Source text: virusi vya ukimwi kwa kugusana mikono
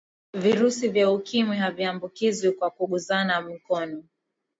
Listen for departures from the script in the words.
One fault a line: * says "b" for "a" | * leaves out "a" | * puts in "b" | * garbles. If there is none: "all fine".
* puts in "haviambukizwi"